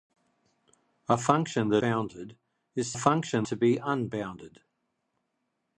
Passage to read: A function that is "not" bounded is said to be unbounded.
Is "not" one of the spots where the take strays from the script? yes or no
yes